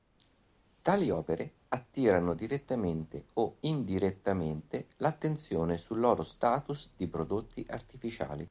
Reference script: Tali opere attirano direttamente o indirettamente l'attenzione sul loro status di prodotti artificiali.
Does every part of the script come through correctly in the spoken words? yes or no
yes